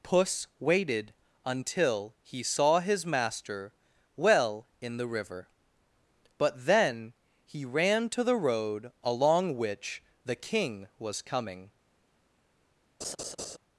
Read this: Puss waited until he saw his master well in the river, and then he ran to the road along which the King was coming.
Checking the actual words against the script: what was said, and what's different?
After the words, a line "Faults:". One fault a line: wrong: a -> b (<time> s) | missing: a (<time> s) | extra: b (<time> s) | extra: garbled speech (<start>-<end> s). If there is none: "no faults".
Puss waited until he saw his master well in the river, but then he ran to the road along which the King was coming.
Faults:
wrong: and -> but (6.4 s)